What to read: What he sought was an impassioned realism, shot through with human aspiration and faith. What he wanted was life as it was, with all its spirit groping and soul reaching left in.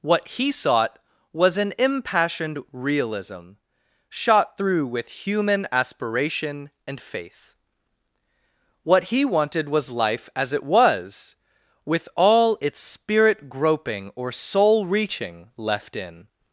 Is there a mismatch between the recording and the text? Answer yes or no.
yes